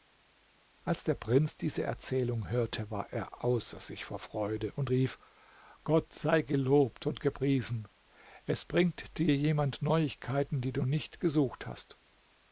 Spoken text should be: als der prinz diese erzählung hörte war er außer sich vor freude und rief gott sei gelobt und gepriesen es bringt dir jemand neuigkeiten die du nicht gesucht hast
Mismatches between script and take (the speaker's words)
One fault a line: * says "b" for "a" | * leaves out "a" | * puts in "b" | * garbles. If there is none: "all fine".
all fine